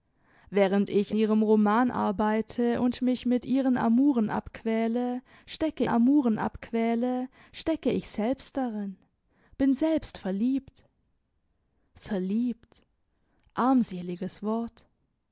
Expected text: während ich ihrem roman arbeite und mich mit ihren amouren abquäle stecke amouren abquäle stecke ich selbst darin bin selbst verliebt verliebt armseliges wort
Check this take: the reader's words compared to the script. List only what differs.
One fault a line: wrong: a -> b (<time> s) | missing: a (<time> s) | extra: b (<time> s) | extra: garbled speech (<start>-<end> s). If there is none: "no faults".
no faults